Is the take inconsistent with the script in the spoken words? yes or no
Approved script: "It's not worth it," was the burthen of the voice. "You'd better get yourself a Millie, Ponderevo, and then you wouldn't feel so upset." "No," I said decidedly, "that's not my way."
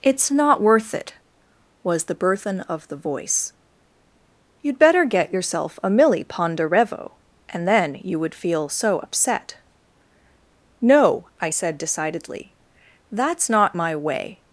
yes